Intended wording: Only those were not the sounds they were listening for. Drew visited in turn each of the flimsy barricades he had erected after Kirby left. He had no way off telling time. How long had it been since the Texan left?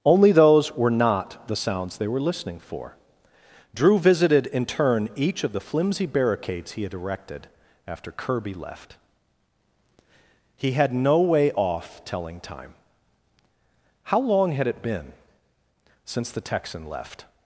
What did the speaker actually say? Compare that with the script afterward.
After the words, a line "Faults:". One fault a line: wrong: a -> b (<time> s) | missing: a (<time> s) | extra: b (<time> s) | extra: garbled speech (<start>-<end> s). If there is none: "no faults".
Only those were not the sounds they were listening for. Drew visited in turn each of the flimsy barricades he had erected after Kirby left. He had no way off telling time. How long had it been since the Texan left?
Faults:
no faults